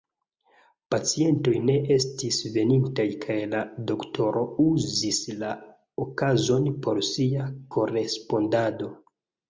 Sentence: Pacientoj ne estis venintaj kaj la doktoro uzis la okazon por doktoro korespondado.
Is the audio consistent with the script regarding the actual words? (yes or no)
no